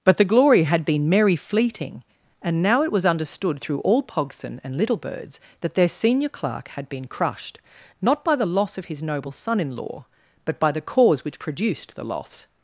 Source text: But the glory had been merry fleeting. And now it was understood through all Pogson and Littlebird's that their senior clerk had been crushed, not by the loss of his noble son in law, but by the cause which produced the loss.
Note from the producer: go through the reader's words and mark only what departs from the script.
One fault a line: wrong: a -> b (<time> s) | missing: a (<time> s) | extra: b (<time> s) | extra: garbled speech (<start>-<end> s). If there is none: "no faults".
no faults